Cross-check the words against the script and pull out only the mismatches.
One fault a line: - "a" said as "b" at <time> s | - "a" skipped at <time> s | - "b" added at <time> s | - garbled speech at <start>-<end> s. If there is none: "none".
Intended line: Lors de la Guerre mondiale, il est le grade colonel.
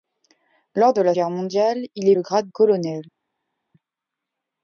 none